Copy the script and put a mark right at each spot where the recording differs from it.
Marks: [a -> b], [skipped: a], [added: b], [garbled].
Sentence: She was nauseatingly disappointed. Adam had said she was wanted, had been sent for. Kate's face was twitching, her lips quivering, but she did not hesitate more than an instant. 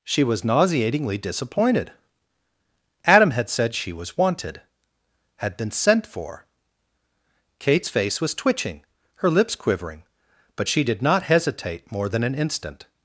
She was nauseatingly disappointed. Adam had said she was wanted, had been sent for. Kate's face was twitching, her lips quivering, but she did not hesitate more than an instant.